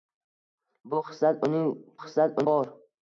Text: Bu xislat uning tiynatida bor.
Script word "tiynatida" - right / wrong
wrong